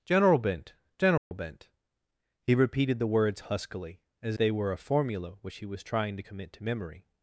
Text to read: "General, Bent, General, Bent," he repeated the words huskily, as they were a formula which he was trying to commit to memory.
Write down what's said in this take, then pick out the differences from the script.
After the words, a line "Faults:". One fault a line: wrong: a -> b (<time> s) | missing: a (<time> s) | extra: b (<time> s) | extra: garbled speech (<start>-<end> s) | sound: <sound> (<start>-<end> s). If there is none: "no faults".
"General, Bent, General, Bent," he repeated the words huskily, as they were a formula which he was trying to commit to memory.
Faults:
sound: dropout (1.2-1.3 s)